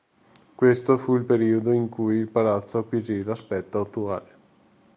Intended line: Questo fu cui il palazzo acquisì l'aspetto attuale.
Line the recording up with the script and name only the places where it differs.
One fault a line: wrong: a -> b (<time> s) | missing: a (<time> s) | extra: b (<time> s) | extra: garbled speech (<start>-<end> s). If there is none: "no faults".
extra: il periodo in (1.1 s)